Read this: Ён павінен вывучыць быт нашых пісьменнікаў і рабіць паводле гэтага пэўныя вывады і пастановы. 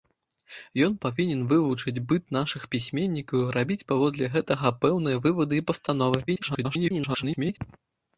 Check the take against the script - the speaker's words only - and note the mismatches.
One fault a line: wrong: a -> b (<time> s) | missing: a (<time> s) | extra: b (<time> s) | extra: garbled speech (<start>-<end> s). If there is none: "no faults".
extra: garbled speech (6.3-7.6 s)